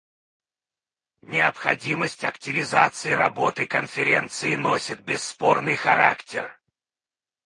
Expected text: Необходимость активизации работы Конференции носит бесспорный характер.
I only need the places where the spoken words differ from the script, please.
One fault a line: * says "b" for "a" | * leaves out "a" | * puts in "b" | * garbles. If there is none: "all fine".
all fine